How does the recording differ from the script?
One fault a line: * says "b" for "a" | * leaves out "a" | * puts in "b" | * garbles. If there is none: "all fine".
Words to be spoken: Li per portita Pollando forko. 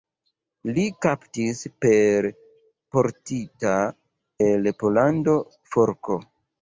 * puts in "kaptis"
* puts in "el"